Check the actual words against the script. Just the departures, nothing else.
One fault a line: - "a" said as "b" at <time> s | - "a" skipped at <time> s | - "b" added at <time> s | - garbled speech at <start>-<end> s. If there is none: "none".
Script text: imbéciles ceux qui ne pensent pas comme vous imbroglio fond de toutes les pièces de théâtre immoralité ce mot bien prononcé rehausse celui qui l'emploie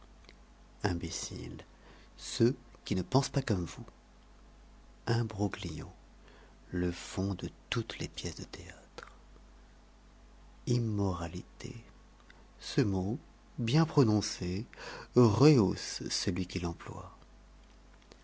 - "le" added at 6.7 s